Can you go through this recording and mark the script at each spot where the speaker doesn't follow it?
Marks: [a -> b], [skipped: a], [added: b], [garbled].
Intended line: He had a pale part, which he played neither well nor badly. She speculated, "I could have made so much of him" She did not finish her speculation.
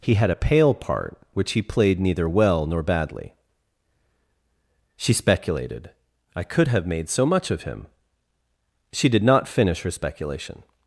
He had a pale part, which he played neither well nor badly. She speculated, "I could have made so much of him" She did not finish her speculation.